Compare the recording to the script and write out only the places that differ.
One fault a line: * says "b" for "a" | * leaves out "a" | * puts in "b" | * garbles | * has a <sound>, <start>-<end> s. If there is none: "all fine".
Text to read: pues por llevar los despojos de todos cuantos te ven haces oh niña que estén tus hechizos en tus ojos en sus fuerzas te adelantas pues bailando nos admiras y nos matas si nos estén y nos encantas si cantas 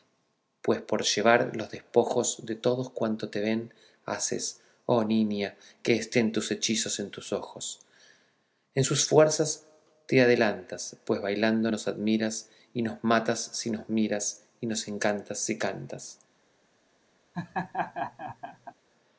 * says "miras" for "estén"
* has a laugh, 17.3-18.7 s